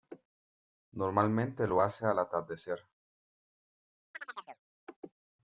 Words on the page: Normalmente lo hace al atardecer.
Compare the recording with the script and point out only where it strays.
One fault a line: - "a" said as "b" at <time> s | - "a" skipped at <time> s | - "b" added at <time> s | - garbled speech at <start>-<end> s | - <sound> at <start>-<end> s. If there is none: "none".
- chirp at 4.1-4.6 s